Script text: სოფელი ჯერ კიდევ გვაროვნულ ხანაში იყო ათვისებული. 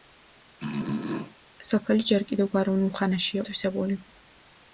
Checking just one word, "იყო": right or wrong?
wrong